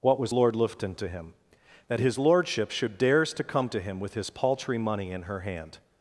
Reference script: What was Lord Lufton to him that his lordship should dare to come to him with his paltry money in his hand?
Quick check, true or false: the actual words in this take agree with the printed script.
false